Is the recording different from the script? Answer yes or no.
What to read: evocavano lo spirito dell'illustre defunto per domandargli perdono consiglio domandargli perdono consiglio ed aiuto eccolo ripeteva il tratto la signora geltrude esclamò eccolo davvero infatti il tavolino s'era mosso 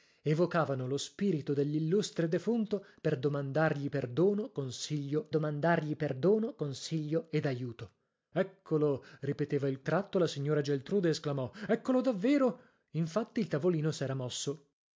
no